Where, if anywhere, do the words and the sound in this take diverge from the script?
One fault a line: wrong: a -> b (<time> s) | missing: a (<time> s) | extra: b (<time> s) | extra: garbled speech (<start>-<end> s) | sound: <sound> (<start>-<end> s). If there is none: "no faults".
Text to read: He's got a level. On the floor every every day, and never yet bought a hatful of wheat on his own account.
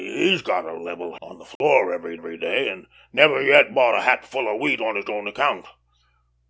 sound: dropout (1.6-1.6 s)